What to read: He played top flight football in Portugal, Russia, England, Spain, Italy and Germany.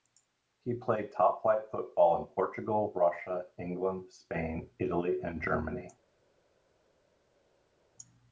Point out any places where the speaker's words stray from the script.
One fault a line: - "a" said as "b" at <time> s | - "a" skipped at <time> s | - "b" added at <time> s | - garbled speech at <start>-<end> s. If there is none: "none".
none